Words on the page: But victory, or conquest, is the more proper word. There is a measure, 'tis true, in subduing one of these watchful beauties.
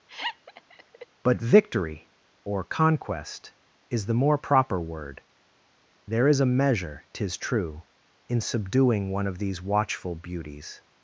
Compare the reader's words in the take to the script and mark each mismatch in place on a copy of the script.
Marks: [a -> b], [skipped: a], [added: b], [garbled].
But victory, or conquest, is the more proper word. There is a measure, 'tis true, in subduing one of these watchful beauties.